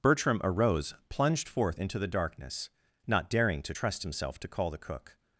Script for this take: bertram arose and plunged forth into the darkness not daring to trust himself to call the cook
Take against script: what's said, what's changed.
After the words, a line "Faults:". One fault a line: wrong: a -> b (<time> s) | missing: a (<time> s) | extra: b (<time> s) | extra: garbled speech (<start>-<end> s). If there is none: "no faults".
bertram arose plunged forth into the darkness not daring to trust himself to call the cook
Faults:
missing: and (0.9 s)